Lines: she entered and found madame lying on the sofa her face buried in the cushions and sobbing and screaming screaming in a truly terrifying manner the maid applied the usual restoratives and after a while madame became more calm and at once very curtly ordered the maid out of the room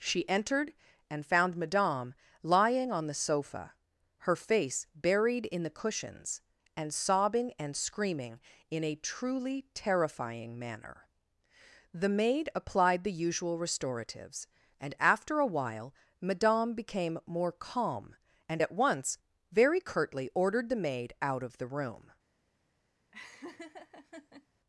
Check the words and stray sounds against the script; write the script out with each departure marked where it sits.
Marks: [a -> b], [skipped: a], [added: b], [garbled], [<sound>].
she entered and found madame lying on the sofa her face buried in the cushions and sobbing and screaming [skipped: screaming] in a truly terrifying manner the maid applied the usual restoratives and after a while madame became more calm and at once very curtly ordered the maid out of the room [laugh]